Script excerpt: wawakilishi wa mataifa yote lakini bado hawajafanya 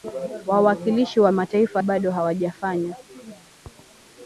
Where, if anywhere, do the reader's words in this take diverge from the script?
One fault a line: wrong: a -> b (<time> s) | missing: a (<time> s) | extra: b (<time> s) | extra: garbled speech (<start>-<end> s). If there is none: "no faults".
missing: yote lakini (1.8 s)